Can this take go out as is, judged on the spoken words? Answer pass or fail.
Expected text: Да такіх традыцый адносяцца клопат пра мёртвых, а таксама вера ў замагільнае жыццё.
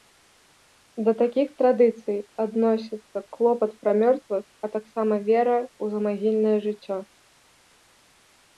pass